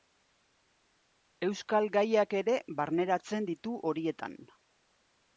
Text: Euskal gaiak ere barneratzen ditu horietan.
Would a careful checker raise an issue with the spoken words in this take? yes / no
no